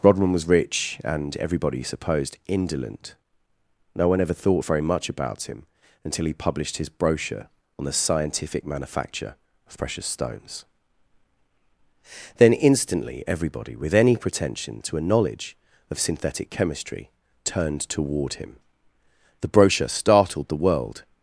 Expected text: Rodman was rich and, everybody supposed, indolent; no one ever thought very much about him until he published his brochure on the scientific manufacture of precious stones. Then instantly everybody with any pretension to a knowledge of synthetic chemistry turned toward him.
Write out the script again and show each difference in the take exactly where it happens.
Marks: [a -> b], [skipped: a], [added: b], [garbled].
Rodman was rich and, everybody supposed, indolent; no one ever thought very much about him until he published his brochure on the scientific manufacture of precious stones. Then instantly everybody with any pretension to a knowledge of synthetic chemistry turned toward him. [added: The brochure startled the world]